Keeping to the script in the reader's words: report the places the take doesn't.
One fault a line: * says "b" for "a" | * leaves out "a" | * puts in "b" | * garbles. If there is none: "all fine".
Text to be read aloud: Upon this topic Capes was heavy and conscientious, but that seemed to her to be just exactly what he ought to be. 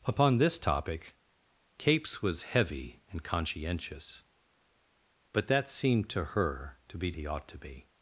* leaves out "just exactly what"